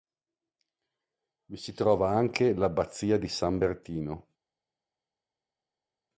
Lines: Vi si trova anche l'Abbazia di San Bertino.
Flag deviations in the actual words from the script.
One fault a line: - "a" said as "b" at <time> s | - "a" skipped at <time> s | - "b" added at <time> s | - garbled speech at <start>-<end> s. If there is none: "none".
none